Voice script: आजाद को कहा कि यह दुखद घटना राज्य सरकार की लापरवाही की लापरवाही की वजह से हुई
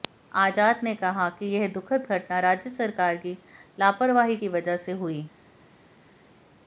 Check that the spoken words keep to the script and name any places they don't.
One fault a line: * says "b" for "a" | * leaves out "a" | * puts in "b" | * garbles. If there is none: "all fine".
* says "ने" for "को"
* leaves out "लापरवाही की"